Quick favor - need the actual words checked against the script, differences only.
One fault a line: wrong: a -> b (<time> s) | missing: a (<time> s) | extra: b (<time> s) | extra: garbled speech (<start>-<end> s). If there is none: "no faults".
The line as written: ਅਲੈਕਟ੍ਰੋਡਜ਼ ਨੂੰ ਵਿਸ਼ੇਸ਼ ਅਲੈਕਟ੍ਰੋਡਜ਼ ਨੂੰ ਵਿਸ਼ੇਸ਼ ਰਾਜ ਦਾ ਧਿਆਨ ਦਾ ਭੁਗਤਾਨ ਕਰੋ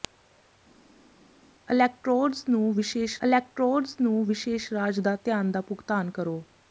no faults